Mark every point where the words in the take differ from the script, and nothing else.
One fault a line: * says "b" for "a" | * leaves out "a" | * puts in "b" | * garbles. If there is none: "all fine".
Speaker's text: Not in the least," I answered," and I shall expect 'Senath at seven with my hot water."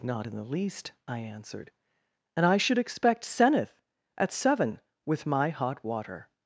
* says "should" for "shall"